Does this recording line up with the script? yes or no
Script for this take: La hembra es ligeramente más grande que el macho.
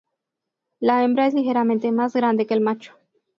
yes